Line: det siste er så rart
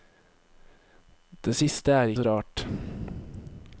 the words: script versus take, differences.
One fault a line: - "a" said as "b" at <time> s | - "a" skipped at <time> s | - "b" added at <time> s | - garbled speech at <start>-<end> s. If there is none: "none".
none